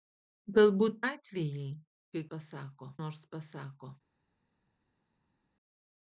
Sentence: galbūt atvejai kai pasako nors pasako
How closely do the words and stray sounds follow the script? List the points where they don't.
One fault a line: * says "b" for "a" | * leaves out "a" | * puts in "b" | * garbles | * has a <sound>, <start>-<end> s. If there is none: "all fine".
all fine